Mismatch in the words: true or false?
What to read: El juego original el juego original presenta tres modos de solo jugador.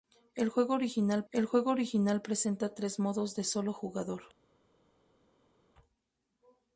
false